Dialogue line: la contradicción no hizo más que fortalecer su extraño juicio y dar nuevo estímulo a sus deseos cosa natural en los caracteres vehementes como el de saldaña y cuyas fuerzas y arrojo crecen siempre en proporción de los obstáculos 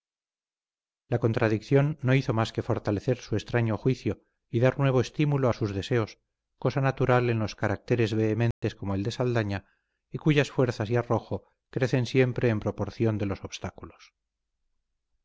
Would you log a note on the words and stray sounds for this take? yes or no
yes